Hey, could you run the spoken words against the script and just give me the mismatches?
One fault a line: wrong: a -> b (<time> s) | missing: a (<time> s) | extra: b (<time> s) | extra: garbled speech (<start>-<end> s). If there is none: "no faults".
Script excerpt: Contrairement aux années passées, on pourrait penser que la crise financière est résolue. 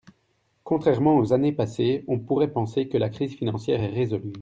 no faults